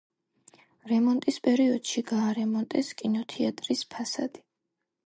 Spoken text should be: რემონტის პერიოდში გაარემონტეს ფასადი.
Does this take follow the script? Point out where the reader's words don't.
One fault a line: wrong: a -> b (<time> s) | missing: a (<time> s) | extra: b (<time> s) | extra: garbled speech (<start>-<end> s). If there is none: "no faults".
extra: კინოთეატრის (3.0 s)